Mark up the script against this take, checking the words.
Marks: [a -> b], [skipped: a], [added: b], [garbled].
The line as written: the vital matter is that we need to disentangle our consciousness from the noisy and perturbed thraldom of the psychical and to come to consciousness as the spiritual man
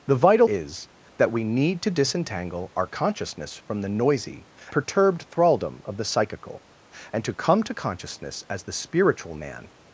the vital [skipped: matter] is that we need to disentangle our consciousness from the noisy [skipped: and] perturbed thraldom of the psychical and to come to consciousness as the spiritual man